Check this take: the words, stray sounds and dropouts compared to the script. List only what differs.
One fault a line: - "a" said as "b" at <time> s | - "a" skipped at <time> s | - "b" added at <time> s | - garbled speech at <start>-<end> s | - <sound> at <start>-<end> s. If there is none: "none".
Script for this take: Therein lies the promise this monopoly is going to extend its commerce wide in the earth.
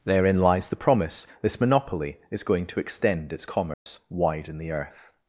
- dropout at 3.7-3.9 s